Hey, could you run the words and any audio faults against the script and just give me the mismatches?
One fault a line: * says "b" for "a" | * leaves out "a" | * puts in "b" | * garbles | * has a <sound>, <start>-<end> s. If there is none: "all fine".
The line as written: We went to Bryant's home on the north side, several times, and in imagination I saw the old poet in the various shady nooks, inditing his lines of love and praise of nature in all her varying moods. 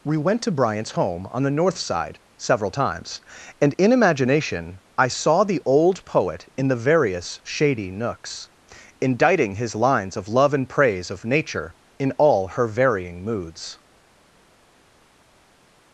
all fine